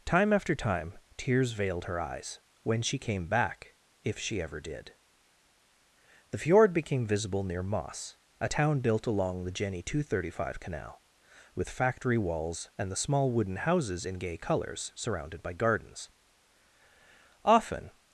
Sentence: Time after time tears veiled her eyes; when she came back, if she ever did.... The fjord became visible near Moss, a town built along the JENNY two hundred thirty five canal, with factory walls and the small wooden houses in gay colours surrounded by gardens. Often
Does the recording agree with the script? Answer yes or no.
yes